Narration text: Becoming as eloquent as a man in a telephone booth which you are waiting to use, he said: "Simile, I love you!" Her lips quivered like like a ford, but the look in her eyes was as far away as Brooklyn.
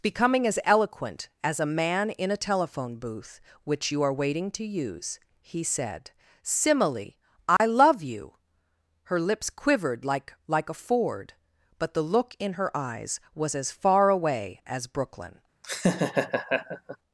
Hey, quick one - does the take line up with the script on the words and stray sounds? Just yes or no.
no